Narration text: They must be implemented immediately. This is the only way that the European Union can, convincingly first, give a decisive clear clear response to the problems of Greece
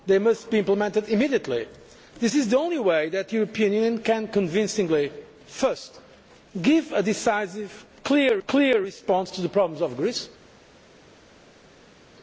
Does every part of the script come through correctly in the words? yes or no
yes